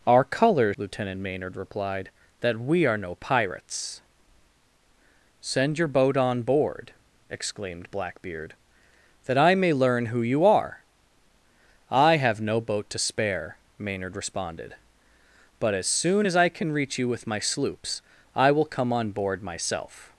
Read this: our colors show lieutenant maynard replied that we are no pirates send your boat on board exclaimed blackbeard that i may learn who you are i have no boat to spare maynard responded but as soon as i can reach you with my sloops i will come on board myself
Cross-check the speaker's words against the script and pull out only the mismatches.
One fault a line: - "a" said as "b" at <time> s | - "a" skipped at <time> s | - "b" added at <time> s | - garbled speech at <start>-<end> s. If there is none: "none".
- "show" skipped at 0.8 s